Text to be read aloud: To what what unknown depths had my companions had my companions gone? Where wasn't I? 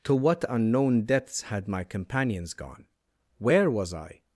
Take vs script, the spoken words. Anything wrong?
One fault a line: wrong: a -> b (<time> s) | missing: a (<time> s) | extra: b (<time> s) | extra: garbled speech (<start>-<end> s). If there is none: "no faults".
missing: what (0.4 s)
missing: had my companions (2.5 s)
wrong: wasn't -> was (3.7 s)